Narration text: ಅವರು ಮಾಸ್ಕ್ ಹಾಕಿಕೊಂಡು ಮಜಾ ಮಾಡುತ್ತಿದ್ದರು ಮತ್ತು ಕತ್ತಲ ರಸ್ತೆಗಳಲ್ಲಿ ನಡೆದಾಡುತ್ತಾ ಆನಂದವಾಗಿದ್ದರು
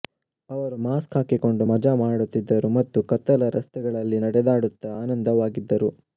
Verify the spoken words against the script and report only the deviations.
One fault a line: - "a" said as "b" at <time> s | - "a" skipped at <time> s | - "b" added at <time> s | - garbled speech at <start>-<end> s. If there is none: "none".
none